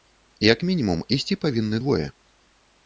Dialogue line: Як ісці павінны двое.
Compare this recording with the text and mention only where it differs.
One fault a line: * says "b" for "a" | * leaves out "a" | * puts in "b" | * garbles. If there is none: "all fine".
* puts in "мінімум"